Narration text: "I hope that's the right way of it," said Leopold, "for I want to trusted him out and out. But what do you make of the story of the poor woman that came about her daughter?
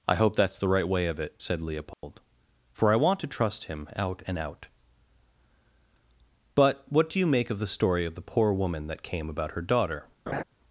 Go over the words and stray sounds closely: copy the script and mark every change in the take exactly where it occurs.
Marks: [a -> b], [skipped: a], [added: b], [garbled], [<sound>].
"I hope that's the right way of it," said Leopold, [dropout] "for I want to [trusted -> trust] him out and out. But what do you make of the story of the poor woman that came about her daughter? [laugh]